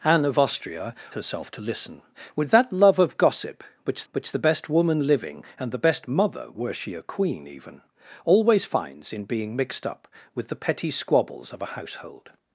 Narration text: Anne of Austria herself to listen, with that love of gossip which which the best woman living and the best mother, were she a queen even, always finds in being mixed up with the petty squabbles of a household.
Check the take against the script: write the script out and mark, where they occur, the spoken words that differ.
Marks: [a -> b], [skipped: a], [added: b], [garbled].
Anne of Austria herself to listen, with that love of gossip which which the best woman living and the best mother, were she a queen even, always finds in being mixed up with the petty squabbles of a household.